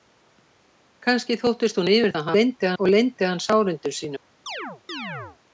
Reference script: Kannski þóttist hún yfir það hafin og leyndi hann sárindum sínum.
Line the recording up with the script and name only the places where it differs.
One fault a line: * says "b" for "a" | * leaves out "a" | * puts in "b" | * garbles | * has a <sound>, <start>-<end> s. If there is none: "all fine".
* says "leyndi" for "hafin"
* has a chirp, 4.5-5.4 s